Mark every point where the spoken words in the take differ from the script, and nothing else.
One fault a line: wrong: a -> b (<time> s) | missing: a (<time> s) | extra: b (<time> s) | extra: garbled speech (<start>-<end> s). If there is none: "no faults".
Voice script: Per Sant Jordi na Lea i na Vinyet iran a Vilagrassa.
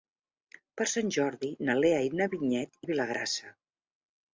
missing: iran (2.8 s)